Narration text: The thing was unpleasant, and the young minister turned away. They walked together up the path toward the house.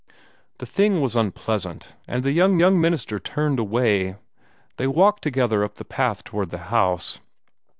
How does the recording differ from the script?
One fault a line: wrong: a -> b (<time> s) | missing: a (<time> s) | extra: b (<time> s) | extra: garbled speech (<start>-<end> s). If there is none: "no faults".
extra: young (2.5 s)